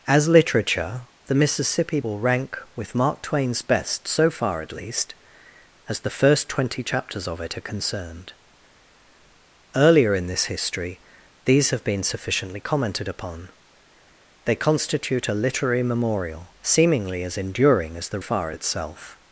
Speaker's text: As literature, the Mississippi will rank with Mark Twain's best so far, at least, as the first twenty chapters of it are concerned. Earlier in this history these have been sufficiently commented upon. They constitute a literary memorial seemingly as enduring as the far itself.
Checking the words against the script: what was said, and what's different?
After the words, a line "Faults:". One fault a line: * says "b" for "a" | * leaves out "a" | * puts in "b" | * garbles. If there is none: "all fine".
As literature, the Mississippi will rank with Mark Twain's best so far, at least, as the first twenty chapters of it are concerned. Earlier in this history these have been sufficiently commented upon. They constitute a literary memorial seemingly as enduring as the far itself.
Faults:
all fine